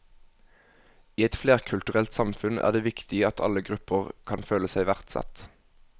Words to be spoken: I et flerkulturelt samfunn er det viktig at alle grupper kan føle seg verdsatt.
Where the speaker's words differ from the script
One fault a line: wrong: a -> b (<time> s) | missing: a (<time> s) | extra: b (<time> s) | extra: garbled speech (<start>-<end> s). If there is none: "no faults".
no faults